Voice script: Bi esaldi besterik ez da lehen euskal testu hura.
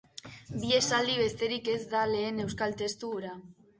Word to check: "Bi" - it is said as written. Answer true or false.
true